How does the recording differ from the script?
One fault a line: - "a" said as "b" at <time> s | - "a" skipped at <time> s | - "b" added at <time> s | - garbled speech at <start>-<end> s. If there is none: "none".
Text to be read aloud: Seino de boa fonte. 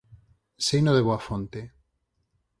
none